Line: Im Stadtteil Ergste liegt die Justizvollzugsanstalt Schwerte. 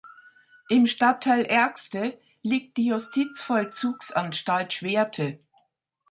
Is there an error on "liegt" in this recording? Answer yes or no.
no